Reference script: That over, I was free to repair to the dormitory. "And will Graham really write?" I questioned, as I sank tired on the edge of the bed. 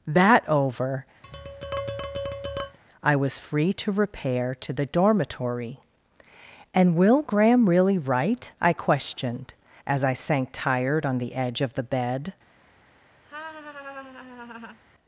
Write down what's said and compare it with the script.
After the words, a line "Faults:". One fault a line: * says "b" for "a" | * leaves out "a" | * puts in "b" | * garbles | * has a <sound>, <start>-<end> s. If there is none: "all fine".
That over, I was free to repair to the dormitory. "And will Graham really write?" I questioned, as I sank tired on the edge of the bed.
Faults:
* has a tap, 1.2-2.8 s
* has a laugh, 13.2-14.8 s